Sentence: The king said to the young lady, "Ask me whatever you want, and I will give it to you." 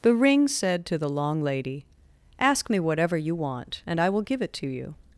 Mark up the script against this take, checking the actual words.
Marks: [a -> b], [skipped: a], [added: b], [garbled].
The [king -> ring] said to the [young -> long] lady, "Ask me whatever you want, and I will give it to you."